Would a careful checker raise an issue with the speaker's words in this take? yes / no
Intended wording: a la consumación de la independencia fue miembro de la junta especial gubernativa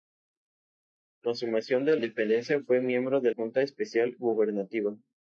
yes